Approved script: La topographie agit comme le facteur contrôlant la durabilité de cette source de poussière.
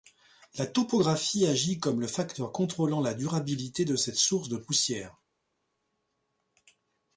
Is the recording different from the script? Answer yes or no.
no